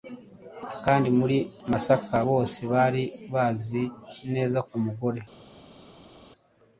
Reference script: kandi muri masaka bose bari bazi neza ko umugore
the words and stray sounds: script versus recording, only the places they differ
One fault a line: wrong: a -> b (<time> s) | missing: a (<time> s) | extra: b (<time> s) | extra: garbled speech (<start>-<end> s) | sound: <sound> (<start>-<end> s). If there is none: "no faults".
missing: ko (4.6 s)